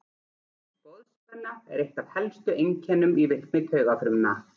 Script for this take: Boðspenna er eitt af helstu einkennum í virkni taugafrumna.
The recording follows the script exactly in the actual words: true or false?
true